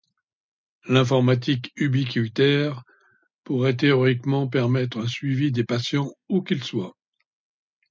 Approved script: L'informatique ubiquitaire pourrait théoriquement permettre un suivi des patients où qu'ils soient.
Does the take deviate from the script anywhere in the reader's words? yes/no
no